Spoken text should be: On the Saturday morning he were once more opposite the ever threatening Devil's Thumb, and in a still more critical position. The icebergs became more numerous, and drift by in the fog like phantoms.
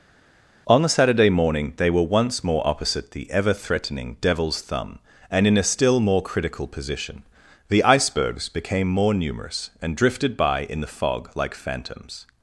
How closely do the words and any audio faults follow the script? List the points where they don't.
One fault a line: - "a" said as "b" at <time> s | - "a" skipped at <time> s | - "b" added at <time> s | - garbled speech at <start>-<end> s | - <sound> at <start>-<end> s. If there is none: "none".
- "he" said as "they" at 1.8 s
- "drift" said as "drifted" at 9.9 s